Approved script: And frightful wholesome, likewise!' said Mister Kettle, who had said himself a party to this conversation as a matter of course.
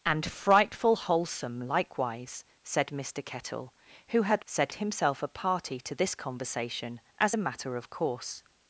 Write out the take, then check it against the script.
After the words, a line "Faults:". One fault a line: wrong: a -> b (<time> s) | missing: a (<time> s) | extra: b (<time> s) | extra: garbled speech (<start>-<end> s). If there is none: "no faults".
And frightful wholesome, likewise!' said Mister Kettle, who had said himself a party to this conversation as a matter of course.
Faults:
no faults